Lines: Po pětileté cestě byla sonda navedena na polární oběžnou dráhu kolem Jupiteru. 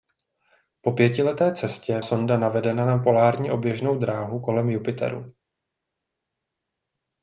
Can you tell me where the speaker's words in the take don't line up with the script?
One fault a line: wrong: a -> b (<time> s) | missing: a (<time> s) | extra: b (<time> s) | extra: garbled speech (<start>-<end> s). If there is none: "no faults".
missing: byla (2.0 s)